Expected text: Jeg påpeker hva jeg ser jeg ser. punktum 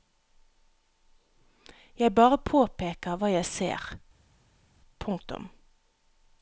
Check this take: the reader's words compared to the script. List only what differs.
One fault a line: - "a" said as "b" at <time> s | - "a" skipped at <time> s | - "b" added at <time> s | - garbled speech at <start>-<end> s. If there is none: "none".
- "bare" added at 2.1 s
- "jeg ser" skipped at 3.9 s